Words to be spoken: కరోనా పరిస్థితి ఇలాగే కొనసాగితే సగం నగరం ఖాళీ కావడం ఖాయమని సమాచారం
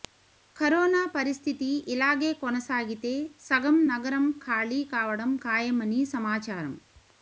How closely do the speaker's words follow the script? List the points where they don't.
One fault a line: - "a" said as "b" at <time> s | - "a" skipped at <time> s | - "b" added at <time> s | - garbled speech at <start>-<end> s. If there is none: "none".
none